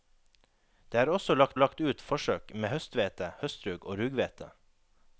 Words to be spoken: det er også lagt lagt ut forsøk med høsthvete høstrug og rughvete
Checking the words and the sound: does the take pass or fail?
pass